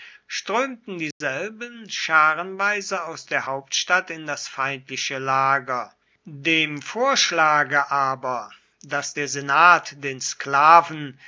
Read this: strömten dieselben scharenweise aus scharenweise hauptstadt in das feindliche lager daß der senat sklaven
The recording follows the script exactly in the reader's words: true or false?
false